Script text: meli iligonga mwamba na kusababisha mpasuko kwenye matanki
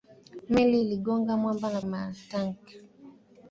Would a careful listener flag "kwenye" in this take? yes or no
yes